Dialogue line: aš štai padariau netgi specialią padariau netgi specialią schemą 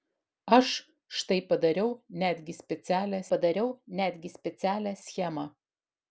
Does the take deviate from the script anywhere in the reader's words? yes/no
no